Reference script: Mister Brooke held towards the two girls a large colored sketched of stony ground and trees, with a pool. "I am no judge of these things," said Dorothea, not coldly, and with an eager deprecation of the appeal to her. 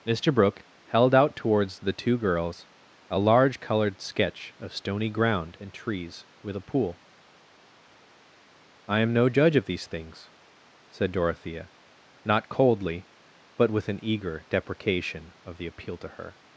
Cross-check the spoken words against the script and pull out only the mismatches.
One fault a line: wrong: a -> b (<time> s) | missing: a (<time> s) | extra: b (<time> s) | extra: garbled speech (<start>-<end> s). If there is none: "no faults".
extra: out (1.1 s)
wrong: sketched -> sketch (4.0 s)
wrong: and -> but (13.6 s)